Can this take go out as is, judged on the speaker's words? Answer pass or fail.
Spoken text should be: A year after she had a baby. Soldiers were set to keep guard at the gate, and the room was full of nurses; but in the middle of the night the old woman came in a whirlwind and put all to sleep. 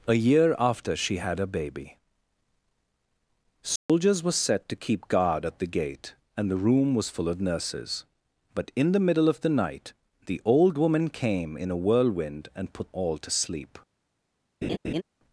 pass